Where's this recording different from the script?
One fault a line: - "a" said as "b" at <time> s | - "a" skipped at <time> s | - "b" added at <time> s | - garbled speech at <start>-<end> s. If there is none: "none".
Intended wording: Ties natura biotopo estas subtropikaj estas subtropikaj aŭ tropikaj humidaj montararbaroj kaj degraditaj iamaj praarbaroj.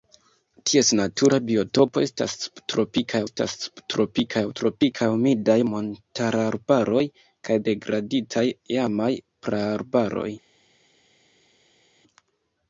none